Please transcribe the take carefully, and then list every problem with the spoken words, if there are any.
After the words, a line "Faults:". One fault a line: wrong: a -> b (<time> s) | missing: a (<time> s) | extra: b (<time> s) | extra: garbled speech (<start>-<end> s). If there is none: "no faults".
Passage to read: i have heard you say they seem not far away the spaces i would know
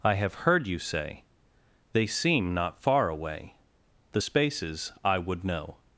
i have heard you say they seem not far away the spaces i would know
Faults:
no faults